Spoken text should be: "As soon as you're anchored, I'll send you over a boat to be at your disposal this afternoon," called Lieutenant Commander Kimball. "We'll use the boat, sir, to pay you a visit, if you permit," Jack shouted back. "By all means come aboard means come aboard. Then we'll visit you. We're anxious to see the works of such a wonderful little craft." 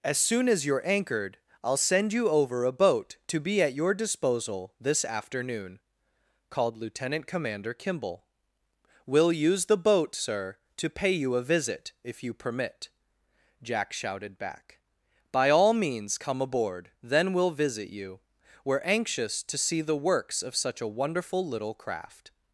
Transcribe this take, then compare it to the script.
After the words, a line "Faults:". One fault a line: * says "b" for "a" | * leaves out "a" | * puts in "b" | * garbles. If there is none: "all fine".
"As soon as you're anchored, I'll send you over a boat to be at your disposal this afternoon," called Lieutenant Commander Kimball. "We'll use the boat, sir, to pay you a visit, if you permit," Jack shouted back. "By all means come aboard. Then we'll visit you. We're anxious to see the works of such a wonderful little craft."
Faults:
* leaves out "means come aboard"